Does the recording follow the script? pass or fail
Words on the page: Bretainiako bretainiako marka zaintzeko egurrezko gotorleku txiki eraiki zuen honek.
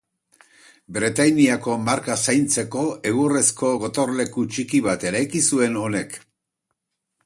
fail